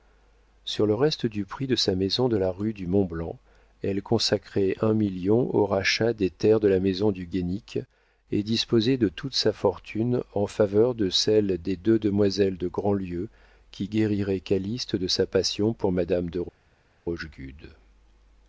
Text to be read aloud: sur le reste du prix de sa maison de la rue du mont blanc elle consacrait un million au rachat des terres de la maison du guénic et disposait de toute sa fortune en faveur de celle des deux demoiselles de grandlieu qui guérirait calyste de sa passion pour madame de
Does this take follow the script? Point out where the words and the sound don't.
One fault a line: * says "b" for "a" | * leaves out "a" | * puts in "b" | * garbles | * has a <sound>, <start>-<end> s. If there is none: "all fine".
all fine